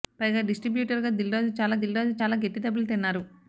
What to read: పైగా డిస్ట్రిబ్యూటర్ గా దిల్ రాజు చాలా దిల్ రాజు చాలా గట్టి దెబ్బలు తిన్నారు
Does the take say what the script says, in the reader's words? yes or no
yes